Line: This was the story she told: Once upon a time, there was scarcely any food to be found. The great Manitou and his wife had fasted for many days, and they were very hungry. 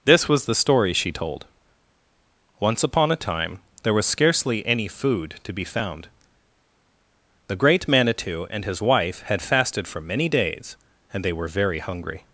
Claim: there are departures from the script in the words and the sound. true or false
false